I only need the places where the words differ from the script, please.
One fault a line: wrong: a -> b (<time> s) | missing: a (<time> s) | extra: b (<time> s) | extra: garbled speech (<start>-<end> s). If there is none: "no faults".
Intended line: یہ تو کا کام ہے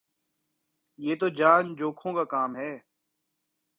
extra: جان جوکھوں (1.3 s)